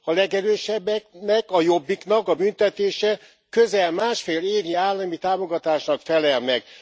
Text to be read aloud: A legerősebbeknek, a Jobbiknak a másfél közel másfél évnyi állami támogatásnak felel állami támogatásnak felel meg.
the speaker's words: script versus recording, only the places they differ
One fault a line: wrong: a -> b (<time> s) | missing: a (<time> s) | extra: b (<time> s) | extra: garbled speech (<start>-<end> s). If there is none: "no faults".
wrong: másfél -> büntetése (2.3 s)
missing: állami támogatásnak felel (6.4 s)